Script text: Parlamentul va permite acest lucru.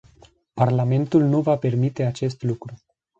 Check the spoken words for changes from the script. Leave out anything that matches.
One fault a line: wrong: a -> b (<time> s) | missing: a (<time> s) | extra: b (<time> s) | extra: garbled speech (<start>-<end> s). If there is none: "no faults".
extra: nu (1.2 s)